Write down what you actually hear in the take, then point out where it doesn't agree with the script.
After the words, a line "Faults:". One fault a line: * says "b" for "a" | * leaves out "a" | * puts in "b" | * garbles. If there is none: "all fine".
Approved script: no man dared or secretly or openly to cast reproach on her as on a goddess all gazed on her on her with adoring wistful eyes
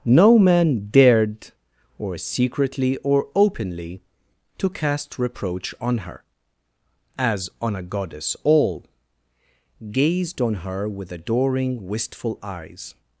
no man dared or secretly or openly to cast reproach on her as on a goddess all gazed on her with adoring wistful eyes
Faults:
* leaves out "on her"